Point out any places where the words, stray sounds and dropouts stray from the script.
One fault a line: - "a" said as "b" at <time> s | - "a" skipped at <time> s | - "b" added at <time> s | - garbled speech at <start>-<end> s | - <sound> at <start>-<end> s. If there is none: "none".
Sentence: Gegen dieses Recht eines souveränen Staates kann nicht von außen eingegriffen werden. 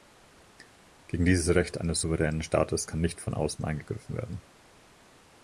none